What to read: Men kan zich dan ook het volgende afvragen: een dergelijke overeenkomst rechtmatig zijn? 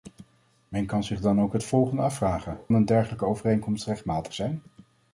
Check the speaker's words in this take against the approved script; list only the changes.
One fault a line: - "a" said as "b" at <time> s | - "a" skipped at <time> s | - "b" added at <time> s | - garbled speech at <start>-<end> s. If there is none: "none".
none